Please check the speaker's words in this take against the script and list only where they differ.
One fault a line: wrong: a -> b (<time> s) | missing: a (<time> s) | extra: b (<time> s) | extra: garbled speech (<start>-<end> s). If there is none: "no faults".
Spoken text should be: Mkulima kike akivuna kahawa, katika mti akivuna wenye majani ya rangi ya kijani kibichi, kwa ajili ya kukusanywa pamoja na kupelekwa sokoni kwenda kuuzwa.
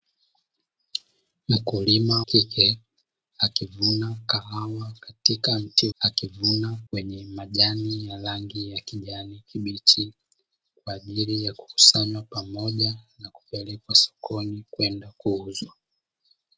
no faults